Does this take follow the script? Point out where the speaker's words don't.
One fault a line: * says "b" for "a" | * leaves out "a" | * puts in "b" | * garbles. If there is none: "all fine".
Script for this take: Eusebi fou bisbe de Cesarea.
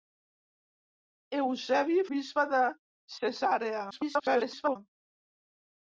* leaves out "fou"
* garbles